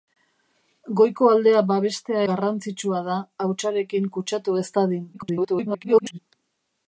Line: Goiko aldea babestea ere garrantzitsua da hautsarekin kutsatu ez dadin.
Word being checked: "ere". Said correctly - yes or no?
no